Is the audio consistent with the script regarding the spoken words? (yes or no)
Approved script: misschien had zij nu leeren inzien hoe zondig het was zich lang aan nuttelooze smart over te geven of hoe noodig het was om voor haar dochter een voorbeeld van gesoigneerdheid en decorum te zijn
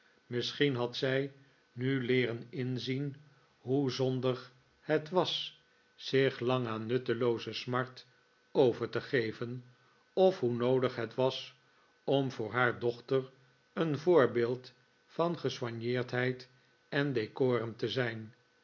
yes